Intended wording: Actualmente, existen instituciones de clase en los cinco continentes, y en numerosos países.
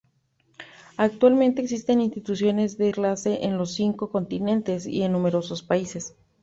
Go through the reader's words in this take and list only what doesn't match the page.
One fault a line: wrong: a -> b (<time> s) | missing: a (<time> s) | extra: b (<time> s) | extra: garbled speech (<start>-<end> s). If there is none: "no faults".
no faults